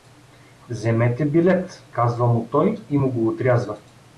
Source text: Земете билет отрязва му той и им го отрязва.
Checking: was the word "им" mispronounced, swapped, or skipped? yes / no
yes